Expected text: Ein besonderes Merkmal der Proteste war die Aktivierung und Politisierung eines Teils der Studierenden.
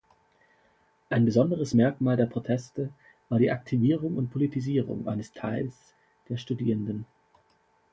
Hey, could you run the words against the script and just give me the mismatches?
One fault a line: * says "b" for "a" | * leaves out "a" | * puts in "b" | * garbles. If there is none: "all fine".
all fine